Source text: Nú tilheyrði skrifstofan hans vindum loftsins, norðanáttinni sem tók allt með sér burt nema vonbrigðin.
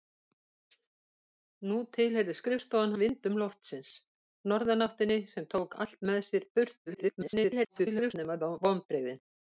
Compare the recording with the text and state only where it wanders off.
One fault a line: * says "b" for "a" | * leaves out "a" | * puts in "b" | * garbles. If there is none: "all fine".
* leaves out "hans"
* garbles